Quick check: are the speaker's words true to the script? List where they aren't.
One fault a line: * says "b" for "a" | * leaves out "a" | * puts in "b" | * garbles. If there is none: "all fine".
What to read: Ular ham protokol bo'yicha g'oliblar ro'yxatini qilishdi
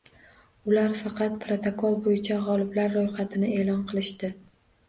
* says "faqat" for "ham"
* puts in "e'lon"